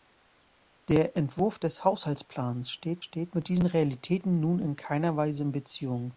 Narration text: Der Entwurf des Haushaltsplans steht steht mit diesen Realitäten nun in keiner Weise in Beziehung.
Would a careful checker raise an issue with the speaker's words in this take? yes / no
no